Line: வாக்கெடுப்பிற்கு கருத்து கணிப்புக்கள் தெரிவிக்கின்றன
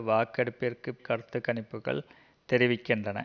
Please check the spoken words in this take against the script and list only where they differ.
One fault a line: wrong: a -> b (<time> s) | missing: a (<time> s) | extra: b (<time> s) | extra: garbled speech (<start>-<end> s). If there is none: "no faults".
no faults